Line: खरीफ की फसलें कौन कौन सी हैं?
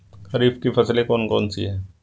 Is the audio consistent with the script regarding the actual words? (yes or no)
yes